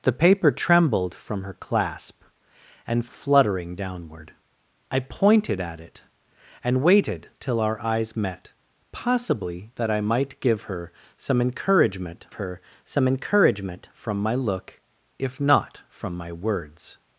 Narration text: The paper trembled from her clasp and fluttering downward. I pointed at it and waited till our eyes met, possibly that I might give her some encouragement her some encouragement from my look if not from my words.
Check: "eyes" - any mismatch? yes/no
no